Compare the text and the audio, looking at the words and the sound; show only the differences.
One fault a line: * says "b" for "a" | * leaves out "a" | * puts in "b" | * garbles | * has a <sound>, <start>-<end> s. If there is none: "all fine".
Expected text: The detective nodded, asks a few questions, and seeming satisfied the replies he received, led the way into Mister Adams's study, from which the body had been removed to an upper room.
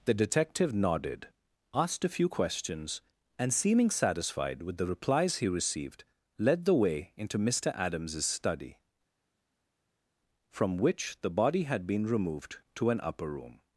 * says "asked" for "asks"
* puts in "with"